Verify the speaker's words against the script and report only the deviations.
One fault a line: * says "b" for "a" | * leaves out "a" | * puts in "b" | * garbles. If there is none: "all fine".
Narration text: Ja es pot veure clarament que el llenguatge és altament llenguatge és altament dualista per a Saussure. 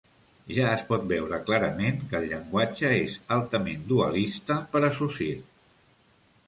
* leaves out "llenguatge és altament"